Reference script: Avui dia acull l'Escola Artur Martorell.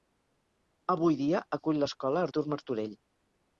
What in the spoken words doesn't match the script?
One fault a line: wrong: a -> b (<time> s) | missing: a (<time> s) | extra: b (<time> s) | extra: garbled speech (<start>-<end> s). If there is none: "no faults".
no faults